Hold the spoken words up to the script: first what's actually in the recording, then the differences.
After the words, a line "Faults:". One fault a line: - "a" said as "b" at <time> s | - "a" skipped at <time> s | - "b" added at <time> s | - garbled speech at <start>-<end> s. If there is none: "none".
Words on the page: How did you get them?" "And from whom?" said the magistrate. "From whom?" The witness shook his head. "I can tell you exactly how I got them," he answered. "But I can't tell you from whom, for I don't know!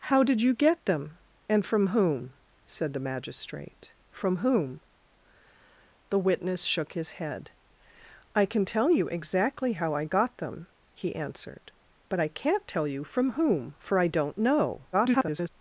How did you get them?" "And from whom?" said the magistrate. "From whom?" The witness shook his head. "I can tell you exactly how I got them," he answered. "But I can't tell you from whom, for I don't know! [garbled]
Faults:
- garbled speech at 14.9-15.5 s